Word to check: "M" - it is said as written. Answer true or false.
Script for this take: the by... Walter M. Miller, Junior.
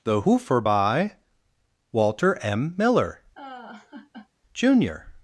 true